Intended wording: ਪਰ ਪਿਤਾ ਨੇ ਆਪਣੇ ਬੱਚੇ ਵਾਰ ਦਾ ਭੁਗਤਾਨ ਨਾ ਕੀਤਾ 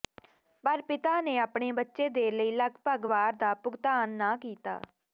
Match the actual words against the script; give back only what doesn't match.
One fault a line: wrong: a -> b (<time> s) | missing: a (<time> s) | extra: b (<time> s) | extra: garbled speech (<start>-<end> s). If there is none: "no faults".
extra: ਦੇ ਲਈ ਲਗਭਗ (2.1 s)